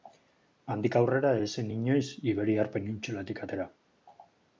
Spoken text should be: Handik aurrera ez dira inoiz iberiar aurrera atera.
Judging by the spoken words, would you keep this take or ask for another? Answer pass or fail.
fail